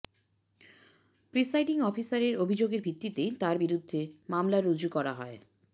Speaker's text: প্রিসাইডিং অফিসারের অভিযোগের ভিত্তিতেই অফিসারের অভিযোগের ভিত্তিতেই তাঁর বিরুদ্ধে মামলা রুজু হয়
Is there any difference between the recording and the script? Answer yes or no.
yes